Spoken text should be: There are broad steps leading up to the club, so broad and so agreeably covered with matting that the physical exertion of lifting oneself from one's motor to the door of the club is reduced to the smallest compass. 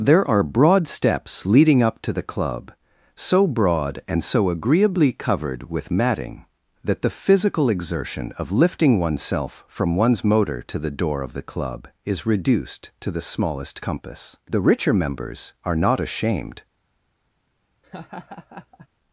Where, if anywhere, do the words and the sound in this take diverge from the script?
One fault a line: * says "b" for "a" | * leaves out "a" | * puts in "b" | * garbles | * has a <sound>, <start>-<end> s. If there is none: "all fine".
* puts in "The richer members are not ashamed"
* has a laugh, 17.8-18.9 s